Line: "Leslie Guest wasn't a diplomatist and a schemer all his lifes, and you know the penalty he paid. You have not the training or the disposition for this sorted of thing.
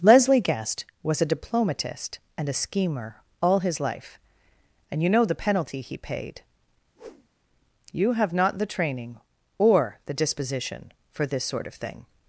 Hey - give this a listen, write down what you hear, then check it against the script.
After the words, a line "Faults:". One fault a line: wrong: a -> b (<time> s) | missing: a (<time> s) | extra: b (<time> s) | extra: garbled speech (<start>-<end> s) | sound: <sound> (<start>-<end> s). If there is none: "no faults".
"Leslie Guest was a diplomatist and a schemer all his life, and you know the penalty he paid. You have not the training or the disposition for this sort of thing.
Faults:
wrong: wasn't -> was (1.0 s)
wrong: lifes -> life (3.8 s)
sound: whoosh (7.0-7.3 s)
wrong: sorted -> sort (11.4 s)